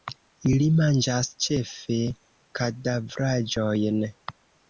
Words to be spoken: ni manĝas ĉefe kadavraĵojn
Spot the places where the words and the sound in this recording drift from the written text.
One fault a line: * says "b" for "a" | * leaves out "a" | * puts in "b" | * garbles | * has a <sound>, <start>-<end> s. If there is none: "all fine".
* says "ili" for "ni"